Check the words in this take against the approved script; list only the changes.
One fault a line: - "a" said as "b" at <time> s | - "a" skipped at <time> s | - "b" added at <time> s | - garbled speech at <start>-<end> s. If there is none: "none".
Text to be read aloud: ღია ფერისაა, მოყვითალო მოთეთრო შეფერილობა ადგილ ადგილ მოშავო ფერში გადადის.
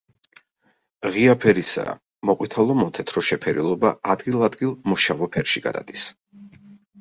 none